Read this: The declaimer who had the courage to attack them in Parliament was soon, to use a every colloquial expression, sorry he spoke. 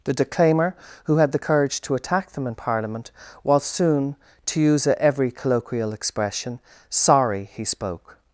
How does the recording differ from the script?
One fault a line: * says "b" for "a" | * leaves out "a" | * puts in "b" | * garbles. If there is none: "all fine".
all fine